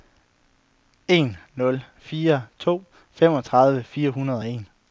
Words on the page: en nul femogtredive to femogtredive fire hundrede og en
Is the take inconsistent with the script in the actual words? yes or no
yes